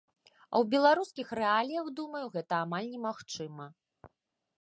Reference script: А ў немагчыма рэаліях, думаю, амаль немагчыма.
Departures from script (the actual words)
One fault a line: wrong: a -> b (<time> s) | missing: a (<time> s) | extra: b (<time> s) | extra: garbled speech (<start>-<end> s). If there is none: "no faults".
wrong: немагчыма -> беларускіх (0.7 s)
extra: гэта (2.4 s)